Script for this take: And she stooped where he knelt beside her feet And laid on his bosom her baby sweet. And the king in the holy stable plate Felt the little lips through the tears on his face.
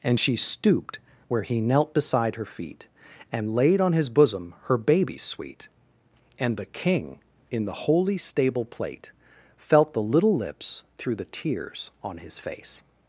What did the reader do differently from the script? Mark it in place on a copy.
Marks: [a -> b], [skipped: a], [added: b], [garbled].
And she stooped where he knelt beside her feet And laid on his bosom her baby sweet. And the king in the holy stable plate Felt the little lips through the tears on his face.